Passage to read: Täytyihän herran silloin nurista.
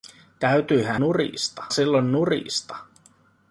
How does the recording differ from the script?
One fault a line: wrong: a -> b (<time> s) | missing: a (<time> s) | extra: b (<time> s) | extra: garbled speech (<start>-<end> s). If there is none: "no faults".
wrong: herran -> nurista (1.0 s)